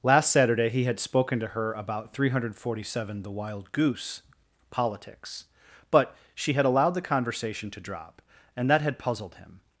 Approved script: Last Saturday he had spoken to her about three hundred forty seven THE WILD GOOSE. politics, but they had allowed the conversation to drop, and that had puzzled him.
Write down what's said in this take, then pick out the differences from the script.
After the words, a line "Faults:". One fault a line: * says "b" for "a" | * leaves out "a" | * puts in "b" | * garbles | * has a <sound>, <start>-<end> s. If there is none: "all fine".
Last Saturday he had spoken to her about three hundred forty seven THE WILD GOOSE. politics, but she had allowed the conversation to drop, and that had puzzled him.
Faults:
* says "she" for "they"